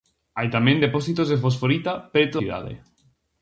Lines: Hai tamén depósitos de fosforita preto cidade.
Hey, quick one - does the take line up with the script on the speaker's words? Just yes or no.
yes